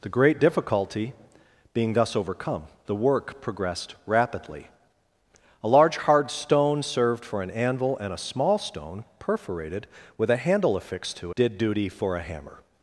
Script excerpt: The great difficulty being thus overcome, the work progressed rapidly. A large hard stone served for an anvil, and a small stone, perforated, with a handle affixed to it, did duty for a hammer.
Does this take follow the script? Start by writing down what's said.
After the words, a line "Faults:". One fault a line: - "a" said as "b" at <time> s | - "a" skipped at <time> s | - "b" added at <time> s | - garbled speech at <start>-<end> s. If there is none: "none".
The great difficulty being thus overcome, the work progressed rapidly. A large hard stone served for an anvil, and a small stone, perforated, with a handle affixed to did duty for a hammer.
Faults:
- "it" skipped at 11.3 s